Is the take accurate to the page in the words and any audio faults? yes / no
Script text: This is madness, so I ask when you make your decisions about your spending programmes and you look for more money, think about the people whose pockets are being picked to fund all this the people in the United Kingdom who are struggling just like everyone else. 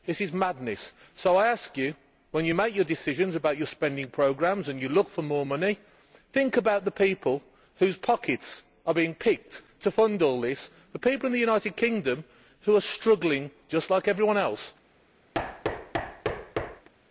no